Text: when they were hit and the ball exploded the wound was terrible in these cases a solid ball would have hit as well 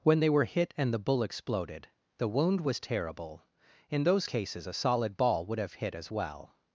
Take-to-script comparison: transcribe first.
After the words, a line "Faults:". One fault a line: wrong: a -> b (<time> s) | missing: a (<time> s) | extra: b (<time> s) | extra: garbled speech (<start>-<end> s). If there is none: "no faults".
when they were hit and the bull exploded the wound was terrible in those cases a solid ball would have hit as well
Faults:
wrong: ball -> bull (1.0 s)
wrong: these -> those (4.0 s)